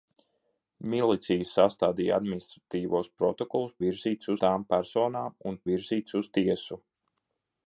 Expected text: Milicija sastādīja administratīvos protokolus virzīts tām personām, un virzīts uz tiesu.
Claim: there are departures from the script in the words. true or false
false